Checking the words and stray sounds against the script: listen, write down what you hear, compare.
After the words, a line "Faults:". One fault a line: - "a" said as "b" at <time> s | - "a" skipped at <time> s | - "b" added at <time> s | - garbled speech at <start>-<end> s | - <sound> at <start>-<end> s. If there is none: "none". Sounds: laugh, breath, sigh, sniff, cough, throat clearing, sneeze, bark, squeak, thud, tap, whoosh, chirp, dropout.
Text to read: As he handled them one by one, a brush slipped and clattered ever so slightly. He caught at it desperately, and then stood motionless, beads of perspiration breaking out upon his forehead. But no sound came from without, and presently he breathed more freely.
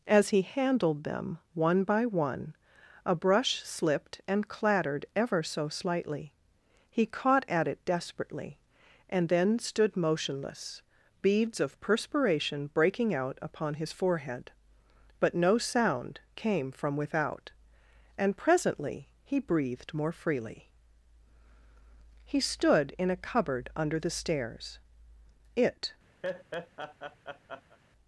As he handled them one by one, a brush slipped and clattered ever so slightly. He caught at it desperately, and then stood motionless, beads of perspiration breaking out upon his forehead. But no sound came from without, and presently he breathed more freely. He stood in a cupboard under the stairs. It
Faults:
- "He stood in a cupboard under the stairs It" added at 22.2 s
- laugh at 26.2-27.8 s